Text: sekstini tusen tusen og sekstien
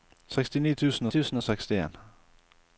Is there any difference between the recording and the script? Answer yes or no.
no